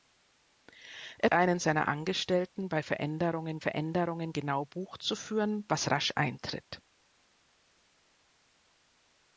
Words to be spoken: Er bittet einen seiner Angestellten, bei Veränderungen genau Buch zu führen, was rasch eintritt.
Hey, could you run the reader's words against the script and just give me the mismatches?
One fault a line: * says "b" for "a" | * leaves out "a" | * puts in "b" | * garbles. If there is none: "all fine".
* leaves out "bittet"
* puts in "Veränderungen"